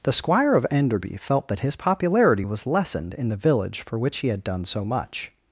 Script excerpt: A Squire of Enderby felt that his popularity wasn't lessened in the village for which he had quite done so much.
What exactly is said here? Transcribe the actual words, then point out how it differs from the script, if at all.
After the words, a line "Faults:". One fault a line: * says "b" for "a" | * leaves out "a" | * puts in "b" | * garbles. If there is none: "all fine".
The Squire of Enderby felt that his popularity was lessened in the village for which he had done so much.
Faults:
* says "The" for "A"
* says "was" for "wasn't"
* leaves out "quite"